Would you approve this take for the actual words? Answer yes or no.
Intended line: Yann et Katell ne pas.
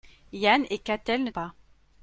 yes